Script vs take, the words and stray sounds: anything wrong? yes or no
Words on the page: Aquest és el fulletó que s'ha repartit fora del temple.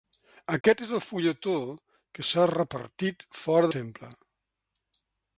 yes